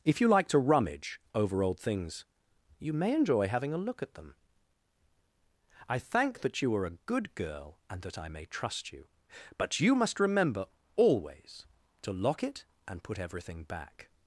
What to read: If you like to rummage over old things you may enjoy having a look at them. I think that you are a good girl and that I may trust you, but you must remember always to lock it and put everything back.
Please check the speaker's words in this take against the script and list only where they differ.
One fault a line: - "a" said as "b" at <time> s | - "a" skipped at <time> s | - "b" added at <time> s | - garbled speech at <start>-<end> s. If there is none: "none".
- "think" said as "thank" at 6.0 s